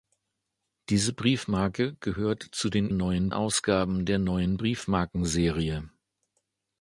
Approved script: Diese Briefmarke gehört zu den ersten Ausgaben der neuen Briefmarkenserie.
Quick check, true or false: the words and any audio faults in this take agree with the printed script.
false